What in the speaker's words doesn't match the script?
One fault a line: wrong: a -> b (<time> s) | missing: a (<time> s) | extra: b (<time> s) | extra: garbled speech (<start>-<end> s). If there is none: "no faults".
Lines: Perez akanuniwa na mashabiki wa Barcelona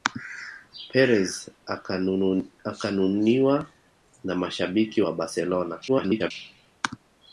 extra: garbled speech (5.9-6.3 s)